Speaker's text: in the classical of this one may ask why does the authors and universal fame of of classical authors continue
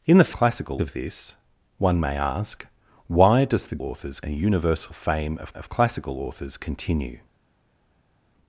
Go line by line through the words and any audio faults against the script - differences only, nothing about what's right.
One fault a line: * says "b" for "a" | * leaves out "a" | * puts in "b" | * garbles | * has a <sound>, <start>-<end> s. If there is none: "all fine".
all fine